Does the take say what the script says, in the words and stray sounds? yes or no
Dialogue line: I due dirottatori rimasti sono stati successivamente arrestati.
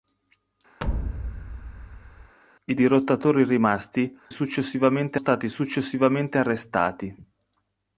no